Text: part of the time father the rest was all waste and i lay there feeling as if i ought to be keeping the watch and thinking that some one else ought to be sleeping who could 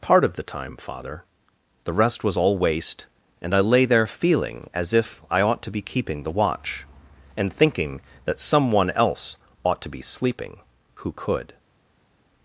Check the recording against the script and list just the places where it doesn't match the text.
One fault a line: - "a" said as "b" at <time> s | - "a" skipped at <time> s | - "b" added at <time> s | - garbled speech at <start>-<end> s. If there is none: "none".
none